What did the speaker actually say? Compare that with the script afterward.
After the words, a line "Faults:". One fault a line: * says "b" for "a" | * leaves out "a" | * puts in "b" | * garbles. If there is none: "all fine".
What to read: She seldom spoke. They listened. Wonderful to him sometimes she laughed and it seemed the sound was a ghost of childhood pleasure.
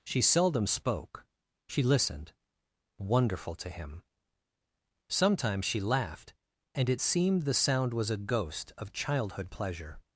She seldom spoke. She listened. Wonderful to him sometimes she laughed and it seemed the sound was a ghost of childhood pleasure.
Faults:
* says "She" for "They"